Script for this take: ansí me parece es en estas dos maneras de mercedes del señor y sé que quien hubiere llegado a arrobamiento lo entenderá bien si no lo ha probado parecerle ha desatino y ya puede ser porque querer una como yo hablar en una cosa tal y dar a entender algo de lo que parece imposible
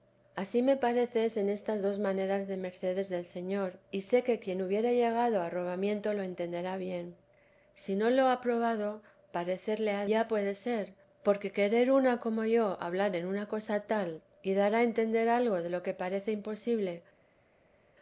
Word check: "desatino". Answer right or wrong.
wrong